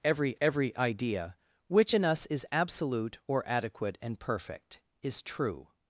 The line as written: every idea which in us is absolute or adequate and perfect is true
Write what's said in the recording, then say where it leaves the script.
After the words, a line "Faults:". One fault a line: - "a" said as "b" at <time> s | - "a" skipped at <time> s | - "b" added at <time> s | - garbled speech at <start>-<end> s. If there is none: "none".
every every idea which in us is absolute or adequate and perfect is true
Faults:
- "every" added at 0.4 s